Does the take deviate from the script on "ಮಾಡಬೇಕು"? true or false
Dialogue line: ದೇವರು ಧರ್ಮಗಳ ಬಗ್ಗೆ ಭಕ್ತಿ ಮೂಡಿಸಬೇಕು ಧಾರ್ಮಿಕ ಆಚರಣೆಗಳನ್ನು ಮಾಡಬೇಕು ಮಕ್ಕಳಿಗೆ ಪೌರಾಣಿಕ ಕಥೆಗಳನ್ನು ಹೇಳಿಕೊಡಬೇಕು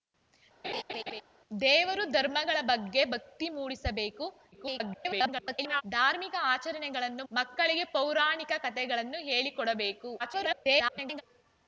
true